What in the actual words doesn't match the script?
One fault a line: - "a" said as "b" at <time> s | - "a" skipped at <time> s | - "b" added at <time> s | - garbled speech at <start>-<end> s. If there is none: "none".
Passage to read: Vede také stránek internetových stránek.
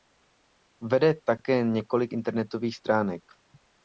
- "stránek" said as "několik" at 1.6 s